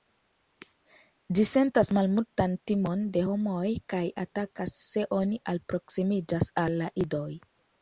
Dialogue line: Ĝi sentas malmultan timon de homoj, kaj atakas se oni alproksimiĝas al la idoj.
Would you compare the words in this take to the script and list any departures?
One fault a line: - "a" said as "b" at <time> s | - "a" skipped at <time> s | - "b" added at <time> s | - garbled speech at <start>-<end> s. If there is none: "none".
none